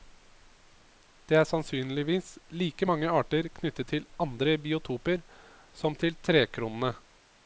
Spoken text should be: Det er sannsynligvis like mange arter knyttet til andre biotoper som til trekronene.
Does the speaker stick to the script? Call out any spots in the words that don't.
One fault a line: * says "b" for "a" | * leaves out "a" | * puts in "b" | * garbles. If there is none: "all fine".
all fine